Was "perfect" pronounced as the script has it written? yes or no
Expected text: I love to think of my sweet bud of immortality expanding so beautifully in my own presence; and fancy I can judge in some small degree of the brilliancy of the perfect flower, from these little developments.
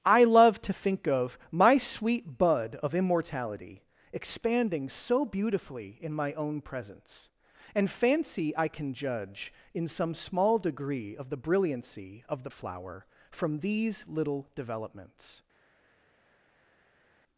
no